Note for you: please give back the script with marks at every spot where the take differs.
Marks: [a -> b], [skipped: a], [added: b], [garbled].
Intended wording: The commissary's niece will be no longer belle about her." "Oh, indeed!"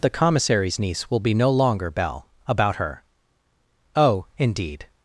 The commissary's niece will be no longer belle about her." "Oh, indeed!"